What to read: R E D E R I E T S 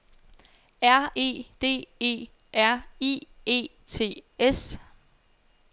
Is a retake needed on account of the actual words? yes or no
no